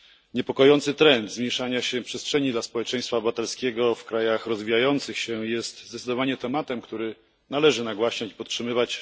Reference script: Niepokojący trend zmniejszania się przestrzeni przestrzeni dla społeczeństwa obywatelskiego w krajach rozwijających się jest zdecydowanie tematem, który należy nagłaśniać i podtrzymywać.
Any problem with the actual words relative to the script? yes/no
yes